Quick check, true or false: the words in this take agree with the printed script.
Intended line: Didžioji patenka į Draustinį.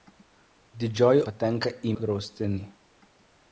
true